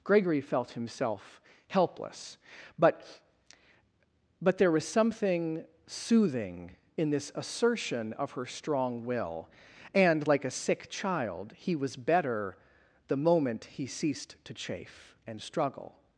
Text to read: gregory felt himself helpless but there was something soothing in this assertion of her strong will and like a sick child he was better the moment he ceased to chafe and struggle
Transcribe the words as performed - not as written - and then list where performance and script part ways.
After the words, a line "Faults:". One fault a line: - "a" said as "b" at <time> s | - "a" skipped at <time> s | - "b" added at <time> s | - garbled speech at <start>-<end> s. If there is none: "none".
gregory felt himself helpless but but there was something soothing in this assertion of her strong will and like a sick child he was better the moment he ceased to chafe and struggle
Faults:
- "but" added at 4.4 s